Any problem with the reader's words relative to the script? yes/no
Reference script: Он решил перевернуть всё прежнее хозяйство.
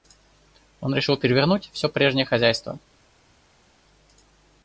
no